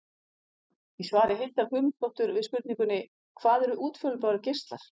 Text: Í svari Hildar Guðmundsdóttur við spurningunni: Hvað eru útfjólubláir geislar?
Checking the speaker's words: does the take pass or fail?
pass